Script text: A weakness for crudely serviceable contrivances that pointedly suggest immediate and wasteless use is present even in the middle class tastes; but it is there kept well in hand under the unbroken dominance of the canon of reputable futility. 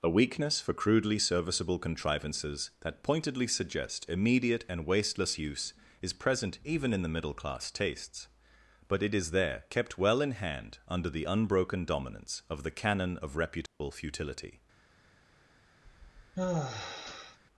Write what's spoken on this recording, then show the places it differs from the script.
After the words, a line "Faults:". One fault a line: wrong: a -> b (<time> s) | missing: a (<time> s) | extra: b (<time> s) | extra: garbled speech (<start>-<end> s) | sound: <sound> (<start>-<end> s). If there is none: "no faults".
A weakness for crudely serviceable contrivances that pointedly suggest immediate and wasteless use is present even in the middle class tastes; but it is there kept well in hand under the unbroken dominance of the canon of reputable futility.
Faults:
sound: dropout (13.7-13.8 s)
sound: sigh (15.8-17.4 s)